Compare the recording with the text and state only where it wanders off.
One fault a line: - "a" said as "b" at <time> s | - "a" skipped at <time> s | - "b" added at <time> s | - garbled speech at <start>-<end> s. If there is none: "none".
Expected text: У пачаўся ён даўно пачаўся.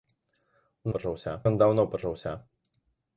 none